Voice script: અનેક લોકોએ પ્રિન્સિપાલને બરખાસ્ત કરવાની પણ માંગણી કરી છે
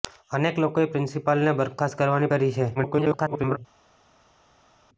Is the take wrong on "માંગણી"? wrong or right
wrong